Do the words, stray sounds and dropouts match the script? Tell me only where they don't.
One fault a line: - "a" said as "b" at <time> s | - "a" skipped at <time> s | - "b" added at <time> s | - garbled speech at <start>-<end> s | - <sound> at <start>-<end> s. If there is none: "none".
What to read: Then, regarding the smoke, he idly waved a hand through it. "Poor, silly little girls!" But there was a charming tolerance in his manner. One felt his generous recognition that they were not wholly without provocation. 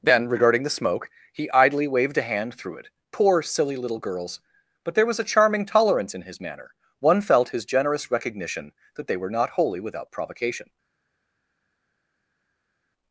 none